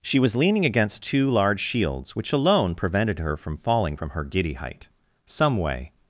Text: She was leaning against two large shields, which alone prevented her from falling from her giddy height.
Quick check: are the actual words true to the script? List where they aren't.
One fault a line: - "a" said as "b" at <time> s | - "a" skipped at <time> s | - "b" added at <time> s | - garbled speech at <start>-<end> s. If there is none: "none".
- "Some way" added at 5.3 s